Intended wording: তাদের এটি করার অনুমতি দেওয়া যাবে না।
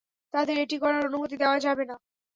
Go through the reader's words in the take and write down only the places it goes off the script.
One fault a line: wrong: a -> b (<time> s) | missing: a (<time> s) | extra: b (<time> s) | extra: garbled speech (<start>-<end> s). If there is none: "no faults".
no faults